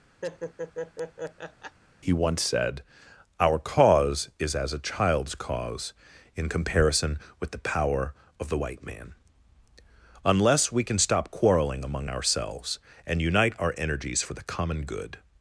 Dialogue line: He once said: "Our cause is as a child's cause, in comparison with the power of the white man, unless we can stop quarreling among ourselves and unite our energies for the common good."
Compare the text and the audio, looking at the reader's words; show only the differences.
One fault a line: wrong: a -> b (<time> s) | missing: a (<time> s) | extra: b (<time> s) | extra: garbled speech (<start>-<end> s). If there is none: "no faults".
no faults